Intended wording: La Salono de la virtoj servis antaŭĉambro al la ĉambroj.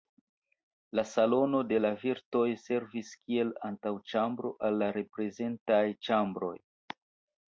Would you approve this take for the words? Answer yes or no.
no